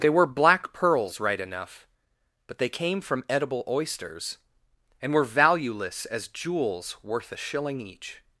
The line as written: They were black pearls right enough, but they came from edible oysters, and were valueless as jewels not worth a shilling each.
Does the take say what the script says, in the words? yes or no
no